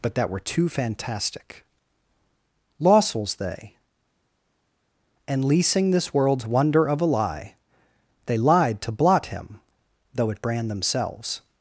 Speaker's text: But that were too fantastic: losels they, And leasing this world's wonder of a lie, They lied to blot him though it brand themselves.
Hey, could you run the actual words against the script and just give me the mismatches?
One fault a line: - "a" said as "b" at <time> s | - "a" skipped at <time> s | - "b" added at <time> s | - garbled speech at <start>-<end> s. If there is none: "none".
none